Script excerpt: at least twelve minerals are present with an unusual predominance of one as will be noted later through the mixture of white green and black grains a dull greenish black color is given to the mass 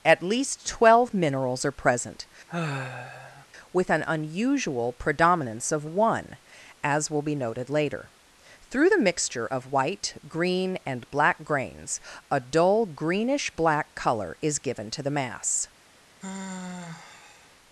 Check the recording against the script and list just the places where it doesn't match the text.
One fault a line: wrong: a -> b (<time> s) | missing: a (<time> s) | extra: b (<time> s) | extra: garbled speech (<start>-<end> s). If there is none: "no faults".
no faults